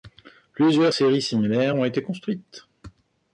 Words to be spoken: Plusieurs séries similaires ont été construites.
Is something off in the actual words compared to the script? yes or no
no